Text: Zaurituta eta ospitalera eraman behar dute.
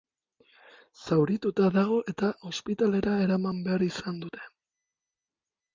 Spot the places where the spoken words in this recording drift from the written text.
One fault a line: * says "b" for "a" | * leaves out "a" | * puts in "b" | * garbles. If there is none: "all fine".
* puts in "dago"
* puts in "izan"